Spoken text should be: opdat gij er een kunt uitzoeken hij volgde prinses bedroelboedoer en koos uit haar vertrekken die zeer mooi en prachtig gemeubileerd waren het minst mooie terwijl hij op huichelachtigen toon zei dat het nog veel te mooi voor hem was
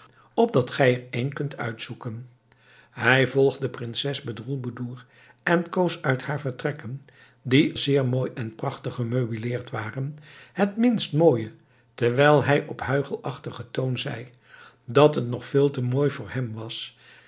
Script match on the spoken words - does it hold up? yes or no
yes